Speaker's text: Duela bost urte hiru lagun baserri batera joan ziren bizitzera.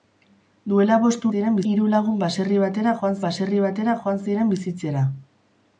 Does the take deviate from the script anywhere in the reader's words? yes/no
yes